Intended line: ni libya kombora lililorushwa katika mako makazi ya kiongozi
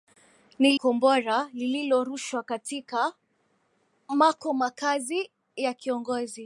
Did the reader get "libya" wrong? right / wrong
wrong